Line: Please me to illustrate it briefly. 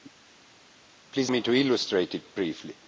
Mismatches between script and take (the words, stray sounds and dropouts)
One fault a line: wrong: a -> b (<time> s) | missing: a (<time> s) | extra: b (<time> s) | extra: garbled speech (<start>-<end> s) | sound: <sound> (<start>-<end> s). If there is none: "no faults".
no faults